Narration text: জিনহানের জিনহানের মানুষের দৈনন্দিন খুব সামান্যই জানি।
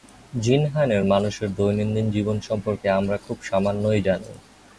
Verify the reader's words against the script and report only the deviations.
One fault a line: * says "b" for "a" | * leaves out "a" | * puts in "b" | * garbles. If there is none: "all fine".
* leaves out "জিনহানের"
* puts in "জীবন সম্পর্কে আমরা"